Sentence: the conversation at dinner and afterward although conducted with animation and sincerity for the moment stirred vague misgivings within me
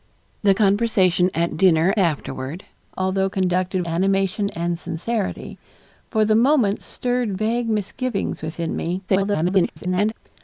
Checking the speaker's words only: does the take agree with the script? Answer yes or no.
no